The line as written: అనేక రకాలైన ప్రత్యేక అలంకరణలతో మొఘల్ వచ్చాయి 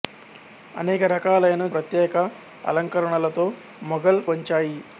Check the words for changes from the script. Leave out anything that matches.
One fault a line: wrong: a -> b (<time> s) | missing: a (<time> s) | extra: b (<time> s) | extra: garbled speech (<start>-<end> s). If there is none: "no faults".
no faults